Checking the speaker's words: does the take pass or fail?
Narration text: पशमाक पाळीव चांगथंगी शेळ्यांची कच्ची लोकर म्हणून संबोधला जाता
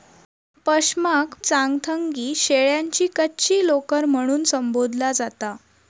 fail